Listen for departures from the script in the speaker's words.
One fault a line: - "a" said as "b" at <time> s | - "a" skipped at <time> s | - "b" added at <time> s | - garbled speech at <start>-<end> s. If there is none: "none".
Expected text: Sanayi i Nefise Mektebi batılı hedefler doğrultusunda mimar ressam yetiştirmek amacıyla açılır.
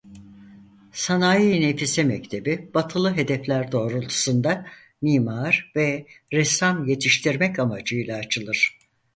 - "ve" added at 5.8 s